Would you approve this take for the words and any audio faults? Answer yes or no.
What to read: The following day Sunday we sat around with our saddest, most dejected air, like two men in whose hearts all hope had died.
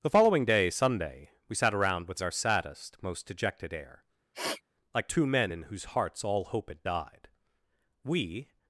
no